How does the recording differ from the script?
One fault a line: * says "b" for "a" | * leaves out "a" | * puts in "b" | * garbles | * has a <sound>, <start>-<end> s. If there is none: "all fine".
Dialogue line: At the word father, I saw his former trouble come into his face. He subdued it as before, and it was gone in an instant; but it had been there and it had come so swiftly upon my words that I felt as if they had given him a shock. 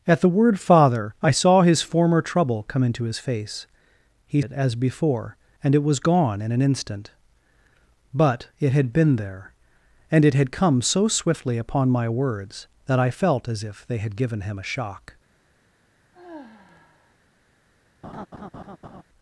* leaves out "subdued"
* has a sigh, 16.1-17.2 s
* has a laugh, 18.0-19.0 s